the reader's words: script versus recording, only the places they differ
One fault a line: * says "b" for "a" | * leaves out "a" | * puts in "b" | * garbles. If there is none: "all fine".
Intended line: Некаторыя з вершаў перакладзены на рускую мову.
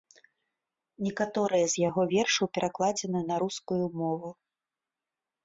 * puts in "яго"